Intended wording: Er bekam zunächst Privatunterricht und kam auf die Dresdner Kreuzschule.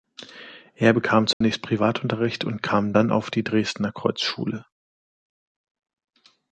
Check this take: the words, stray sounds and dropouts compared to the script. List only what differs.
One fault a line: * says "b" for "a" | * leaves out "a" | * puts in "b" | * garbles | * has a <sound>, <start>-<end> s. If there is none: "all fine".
* has a dropout, 1.3-1.4 s
* puts in "dann"